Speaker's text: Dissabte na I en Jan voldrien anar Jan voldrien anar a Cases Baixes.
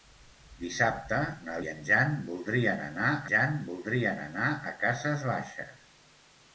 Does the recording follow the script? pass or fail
pass